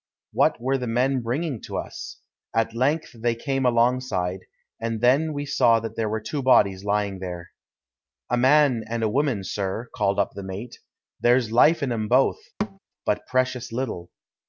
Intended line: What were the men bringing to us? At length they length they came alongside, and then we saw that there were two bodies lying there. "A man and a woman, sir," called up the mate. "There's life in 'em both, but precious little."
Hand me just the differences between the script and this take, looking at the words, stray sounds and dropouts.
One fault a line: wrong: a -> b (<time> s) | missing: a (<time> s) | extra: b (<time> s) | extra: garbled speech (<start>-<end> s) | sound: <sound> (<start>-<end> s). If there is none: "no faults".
missing: length they (3.4 s)
sound: thud (12.6-12.8 s)